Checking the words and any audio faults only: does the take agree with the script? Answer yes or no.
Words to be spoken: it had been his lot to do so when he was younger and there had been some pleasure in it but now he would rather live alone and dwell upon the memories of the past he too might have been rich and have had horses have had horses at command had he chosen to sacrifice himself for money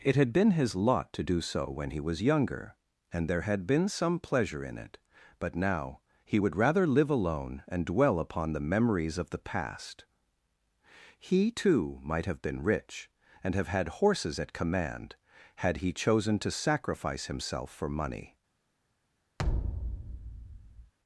no